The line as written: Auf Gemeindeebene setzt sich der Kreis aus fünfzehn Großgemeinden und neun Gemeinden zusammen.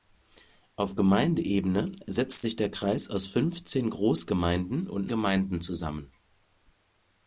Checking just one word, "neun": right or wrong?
wrong